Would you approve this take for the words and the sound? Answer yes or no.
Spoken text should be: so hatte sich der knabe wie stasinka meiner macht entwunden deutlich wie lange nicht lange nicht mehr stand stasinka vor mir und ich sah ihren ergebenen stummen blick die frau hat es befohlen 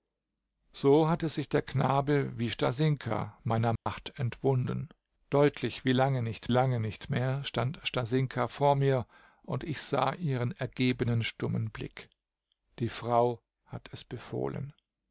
no